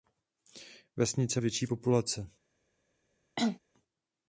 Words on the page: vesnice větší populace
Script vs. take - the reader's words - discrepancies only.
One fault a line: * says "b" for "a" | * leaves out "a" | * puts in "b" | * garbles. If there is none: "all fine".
all fine